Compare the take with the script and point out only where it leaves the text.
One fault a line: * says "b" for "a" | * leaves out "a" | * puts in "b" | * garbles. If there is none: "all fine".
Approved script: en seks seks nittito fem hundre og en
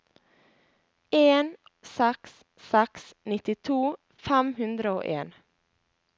all fine